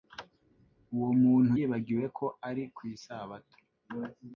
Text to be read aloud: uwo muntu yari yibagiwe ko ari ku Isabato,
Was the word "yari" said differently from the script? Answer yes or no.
yes